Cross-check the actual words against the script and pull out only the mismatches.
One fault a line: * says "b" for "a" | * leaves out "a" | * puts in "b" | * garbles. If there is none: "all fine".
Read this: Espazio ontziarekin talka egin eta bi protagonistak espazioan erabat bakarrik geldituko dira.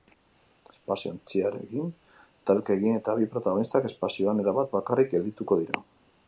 all fine